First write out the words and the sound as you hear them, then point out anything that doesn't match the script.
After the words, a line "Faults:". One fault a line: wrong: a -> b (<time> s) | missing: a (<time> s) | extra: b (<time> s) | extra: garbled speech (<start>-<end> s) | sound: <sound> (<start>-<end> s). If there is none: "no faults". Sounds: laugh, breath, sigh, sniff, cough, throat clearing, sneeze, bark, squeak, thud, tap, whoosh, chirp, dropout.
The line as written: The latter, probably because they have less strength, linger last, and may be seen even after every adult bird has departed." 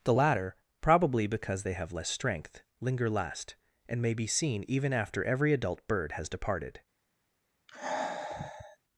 The latter, probably because they have less strength, linger last, and may be seen even after every adult bird has departed."
Faults:
sound: sigh (7.7-8.8 s)